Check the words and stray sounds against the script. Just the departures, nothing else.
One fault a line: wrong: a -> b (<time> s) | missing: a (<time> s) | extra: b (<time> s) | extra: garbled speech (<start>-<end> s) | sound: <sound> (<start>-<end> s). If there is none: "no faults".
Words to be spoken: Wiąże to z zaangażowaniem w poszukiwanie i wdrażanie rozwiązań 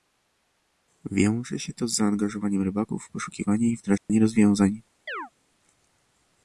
extra: się (1.6 s)
extra: rybaków (2.6 s)
sound: dropout (4.0-4.1 s)
sound: chirp (5.1-5.3 s)